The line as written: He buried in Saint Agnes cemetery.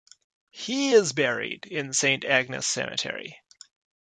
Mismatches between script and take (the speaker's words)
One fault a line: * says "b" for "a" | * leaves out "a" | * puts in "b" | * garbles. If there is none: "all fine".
* puts in "is"